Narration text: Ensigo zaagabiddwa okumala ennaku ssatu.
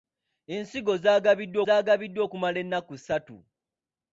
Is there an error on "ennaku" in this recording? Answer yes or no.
no